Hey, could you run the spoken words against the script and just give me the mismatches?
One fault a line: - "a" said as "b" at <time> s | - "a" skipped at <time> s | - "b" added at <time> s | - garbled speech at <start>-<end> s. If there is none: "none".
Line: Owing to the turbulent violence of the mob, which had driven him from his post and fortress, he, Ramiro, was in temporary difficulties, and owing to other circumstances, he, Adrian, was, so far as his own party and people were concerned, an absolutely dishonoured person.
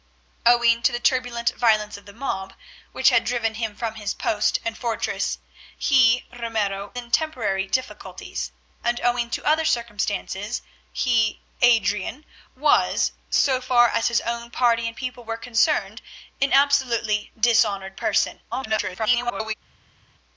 - "was" skipped at 7.0 s
- garbled speech at 18.5-19.5 s